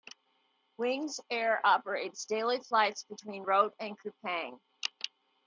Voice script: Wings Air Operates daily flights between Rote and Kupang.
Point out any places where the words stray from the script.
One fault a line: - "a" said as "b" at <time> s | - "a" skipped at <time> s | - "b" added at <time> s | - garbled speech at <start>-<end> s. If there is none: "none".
none